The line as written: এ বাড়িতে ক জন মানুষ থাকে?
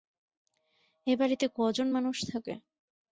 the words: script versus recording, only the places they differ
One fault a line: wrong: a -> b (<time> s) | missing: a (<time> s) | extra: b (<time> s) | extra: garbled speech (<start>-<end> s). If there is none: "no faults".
no faults